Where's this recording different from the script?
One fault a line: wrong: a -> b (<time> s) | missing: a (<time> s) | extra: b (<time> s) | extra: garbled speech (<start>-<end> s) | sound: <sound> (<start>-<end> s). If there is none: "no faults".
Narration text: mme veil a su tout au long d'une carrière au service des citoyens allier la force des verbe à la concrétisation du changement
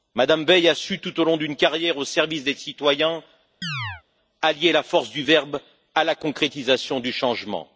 sound: chirp (3.6-4.0 s)
wrong: des -> du (5.1 s)